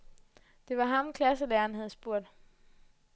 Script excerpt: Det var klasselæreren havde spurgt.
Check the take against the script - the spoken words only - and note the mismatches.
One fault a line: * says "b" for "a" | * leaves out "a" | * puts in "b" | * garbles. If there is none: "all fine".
* puts in "ham"